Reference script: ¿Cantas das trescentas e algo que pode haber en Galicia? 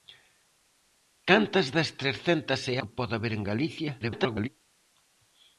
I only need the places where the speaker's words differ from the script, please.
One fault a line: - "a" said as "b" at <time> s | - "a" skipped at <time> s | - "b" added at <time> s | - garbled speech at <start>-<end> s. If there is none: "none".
- "algo" skipped at 2.8 s
- garbled speech at 4.0-4.5 s